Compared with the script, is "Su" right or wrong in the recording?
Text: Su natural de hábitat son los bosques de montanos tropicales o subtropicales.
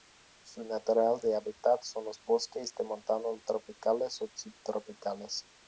right